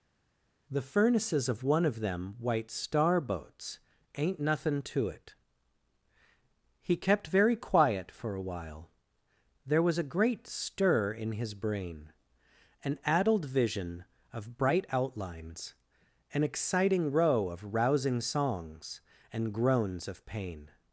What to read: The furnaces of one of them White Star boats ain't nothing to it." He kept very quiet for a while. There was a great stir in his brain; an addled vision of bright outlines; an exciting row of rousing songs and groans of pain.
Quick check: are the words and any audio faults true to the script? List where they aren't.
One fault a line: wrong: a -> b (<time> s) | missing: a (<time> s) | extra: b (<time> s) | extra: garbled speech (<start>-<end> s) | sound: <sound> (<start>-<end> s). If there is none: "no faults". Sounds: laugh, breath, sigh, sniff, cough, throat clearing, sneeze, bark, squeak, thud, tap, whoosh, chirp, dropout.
no faults